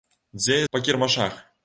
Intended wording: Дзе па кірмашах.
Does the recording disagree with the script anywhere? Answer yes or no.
no